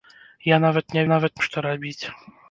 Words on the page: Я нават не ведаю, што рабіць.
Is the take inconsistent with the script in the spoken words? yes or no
yes